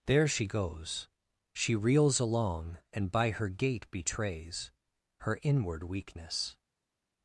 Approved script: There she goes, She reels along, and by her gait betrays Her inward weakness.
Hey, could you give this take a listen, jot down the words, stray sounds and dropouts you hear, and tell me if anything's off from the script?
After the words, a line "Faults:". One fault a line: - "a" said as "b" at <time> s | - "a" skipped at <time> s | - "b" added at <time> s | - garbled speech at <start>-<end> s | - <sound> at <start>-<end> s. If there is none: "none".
There she goes, She reels along, and by her gait betrays Her inward weakness.
Faults:
none